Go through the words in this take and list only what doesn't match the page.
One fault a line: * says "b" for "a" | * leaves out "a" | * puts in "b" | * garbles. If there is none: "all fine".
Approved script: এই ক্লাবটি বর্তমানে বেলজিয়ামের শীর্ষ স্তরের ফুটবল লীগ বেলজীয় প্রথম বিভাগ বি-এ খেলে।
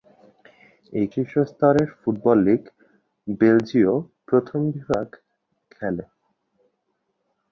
* leaves out "ক্লাবটি বর্তমানে বেলজিয়ামের"
* leaves out "বি-এ"